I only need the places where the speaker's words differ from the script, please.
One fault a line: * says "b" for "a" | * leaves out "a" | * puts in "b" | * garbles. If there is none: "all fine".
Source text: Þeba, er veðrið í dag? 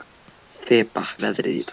all fine